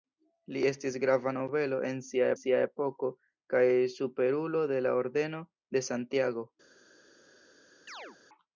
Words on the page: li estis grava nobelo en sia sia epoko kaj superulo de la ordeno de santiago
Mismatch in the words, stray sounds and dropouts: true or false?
true